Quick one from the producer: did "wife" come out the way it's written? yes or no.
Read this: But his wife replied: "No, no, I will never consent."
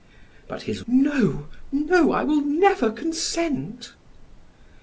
no